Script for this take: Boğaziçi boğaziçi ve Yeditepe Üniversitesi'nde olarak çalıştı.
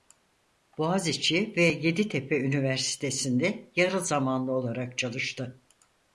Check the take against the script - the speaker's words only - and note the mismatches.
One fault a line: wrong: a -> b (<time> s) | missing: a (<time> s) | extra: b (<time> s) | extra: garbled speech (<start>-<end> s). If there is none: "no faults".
missing: boğaziçi (1.5 s)
extra: yarı zamanlı (3.8 s)